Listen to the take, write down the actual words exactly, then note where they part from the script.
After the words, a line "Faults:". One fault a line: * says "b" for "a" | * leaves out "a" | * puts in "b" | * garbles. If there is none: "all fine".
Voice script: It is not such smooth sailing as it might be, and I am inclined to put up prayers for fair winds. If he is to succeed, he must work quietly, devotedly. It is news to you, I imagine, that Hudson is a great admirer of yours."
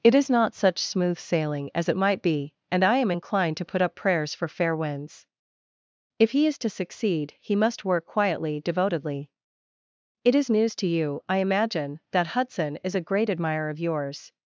It is not such smooth sailing as it might be, and I am inclined to put up prayers for fair winds. If he is to succeed, he must work quietly, devotedly. It is news to you, I imagine, that Hudson is a great admirer of yours."
Faults:
all fine